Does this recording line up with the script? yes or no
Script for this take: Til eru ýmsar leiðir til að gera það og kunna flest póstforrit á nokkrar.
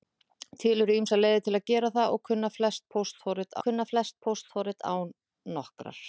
no